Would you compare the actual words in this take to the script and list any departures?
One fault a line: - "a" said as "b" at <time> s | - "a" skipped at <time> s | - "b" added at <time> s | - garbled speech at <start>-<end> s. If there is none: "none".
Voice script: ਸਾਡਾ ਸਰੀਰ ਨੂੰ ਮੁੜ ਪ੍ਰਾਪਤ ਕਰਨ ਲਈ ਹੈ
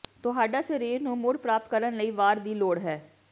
- "ਸਾਡਾ" said as "ਤੁਹਾਡਾ" at 0.2 s
- "ਵਾਰ ਦੀ ਲੋੜ" added at 2.1 s